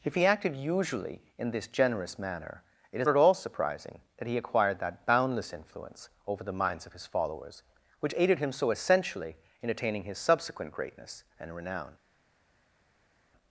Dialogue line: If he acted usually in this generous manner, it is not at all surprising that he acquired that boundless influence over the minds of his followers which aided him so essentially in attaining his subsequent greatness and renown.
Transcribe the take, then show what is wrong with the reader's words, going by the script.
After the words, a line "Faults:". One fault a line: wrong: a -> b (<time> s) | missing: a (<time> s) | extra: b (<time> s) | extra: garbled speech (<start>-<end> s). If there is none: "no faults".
If he acted usually in this generous manner, it is at all surprising that he acquired that boundless influence over the minds of his followers which aided him so essentially in attaining his subsequent greatness and renown.
Faults:
missing: not (3.1 s)